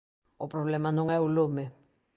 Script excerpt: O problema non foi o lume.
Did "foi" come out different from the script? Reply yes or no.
yes